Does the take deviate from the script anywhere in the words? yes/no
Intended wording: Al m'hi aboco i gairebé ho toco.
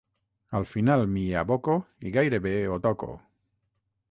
yes